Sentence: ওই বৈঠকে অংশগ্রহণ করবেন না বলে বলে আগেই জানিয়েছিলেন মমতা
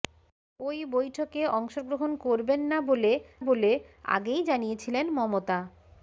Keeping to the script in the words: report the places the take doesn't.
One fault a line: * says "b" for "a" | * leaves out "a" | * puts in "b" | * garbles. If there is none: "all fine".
all fine